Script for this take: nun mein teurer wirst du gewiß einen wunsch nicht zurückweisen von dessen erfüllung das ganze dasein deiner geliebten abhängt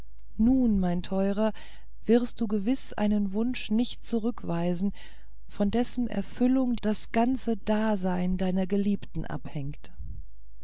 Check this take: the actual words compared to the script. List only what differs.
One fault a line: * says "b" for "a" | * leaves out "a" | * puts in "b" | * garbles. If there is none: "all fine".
all fine